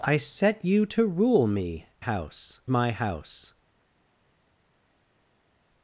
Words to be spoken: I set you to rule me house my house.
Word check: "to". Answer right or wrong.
right